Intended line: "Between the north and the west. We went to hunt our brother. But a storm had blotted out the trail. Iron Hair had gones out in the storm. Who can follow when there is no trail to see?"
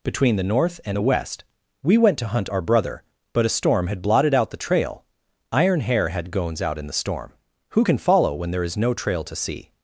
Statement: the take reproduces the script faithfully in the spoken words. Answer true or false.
true